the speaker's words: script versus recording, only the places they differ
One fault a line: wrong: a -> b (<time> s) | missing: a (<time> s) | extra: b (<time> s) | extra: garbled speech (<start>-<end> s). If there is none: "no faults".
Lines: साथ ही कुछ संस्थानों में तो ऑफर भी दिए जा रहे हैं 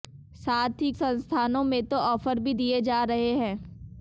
missing: कुछ (0.9 s)